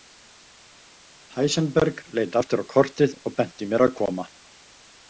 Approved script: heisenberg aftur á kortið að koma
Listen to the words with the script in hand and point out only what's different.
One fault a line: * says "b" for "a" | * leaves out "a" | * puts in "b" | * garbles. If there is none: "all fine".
* puts in "leit"
* puts in "og benti mér"